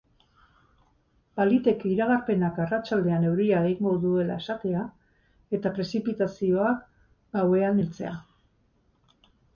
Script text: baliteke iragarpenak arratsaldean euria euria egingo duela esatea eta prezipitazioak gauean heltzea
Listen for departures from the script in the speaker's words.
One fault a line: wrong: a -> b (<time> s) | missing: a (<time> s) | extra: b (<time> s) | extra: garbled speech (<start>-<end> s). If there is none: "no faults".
missing: euria (3.6 s)